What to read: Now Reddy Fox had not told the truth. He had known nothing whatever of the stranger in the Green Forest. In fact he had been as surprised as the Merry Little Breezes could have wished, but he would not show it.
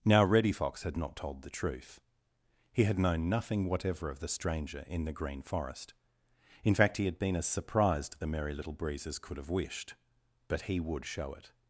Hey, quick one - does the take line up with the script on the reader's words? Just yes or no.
no